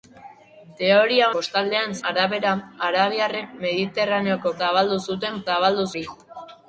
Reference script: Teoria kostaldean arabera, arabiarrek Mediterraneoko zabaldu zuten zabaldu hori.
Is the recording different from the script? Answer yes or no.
no